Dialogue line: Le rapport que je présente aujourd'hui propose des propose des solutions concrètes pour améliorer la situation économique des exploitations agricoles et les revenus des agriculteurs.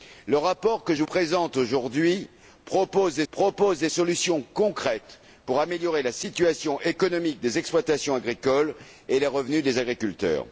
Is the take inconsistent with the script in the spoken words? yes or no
no